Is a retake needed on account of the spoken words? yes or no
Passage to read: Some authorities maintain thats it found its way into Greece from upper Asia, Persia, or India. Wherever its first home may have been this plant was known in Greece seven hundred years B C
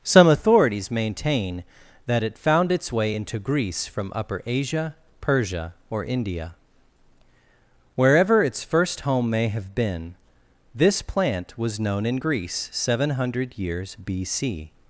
yes